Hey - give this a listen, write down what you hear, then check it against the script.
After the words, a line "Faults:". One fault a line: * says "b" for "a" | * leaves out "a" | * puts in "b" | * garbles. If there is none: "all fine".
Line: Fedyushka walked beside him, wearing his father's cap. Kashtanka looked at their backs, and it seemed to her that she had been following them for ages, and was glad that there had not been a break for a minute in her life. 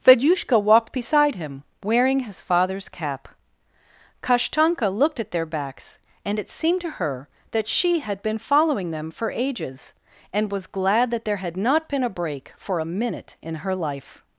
Fedyushka walked beside him, wearing his father's cap. Kashtanka looked at their backs, and it seemed to her that she had been following them for ages, and was glad that there had not been a break for a minute in her life.
Faults:
all fine